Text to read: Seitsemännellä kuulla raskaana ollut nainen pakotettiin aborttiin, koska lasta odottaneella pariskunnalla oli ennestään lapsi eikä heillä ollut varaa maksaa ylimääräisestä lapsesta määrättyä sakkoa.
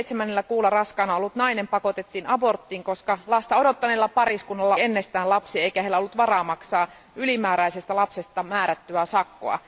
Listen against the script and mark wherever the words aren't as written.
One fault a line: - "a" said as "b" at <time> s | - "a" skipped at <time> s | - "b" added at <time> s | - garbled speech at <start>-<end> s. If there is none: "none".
- "oli" skipped at 4.8 s